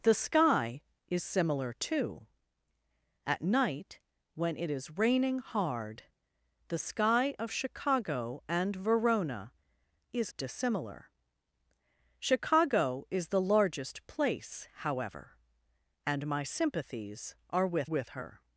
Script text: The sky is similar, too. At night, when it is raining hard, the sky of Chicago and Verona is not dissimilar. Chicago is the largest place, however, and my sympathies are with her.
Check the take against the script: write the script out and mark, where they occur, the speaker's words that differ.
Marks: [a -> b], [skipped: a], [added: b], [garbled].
The sky is similar, too. At night, when it is raining hard, the sky of Chicago and Verona is [skipped: not] dissimilar. Chicago is the largest place, however, and my sympathies are with [added: with] her.